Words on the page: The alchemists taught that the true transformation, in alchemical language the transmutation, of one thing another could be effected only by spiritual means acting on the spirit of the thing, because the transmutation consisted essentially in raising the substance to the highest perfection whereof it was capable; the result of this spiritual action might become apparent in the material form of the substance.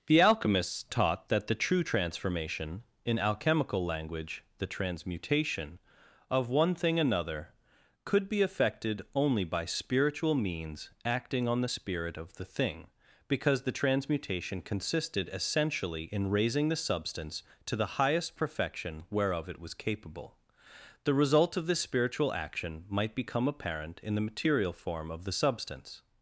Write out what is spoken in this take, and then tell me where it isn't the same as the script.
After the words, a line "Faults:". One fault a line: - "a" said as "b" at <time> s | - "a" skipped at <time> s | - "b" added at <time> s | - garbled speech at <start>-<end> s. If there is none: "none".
The alchemists taught that the true transformation, in alchemical language the transmutation, of one thing another could be effected only by spiritual means acting on the spirit of the thing, because the transmutation consisted essentially in raising the substance to the highest perfection whereof it was capable; the result of this spiritual action might become apparent in the material form of the substance.
Faults:
none